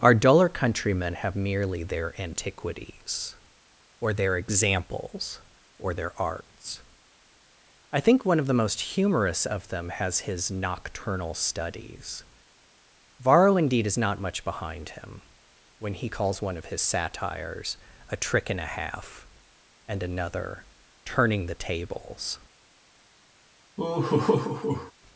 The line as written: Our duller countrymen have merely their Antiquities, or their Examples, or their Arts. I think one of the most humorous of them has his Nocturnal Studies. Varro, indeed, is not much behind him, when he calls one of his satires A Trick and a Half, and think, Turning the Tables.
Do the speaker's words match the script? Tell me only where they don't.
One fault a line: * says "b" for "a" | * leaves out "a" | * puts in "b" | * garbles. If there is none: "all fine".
* says "another" for "think"